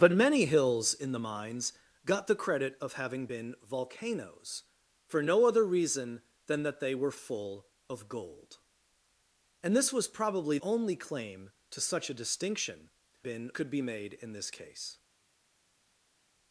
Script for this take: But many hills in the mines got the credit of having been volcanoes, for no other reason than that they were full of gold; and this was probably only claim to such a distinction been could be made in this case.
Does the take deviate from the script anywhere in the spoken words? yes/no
no